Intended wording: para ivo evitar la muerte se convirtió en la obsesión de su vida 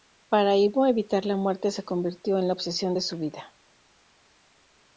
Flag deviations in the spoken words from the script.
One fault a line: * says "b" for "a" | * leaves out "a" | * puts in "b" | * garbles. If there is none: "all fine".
all fine